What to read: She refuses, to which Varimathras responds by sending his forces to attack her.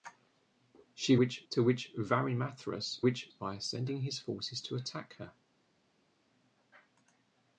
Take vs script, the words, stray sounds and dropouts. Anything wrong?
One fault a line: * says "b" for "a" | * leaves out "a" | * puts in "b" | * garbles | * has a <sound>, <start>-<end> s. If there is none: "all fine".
* says "which" for "refuses"
* says "which" for "responds"